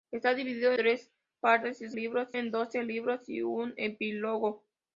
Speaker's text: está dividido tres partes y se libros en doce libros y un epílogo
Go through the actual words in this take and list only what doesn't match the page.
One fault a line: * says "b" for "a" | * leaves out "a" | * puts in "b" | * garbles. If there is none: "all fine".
all fine